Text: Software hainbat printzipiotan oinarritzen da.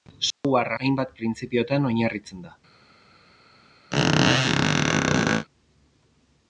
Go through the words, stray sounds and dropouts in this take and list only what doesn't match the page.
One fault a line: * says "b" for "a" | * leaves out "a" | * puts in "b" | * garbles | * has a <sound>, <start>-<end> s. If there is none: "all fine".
* has a dropout, 0.3-0.4 s
* has a squeak, 3.9-5.5 s